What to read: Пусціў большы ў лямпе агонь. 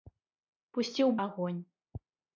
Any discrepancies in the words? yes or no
yes